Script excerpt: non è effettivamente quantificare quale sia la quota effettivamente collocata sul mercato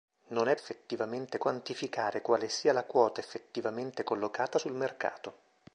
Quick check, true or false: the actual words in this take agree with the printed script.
true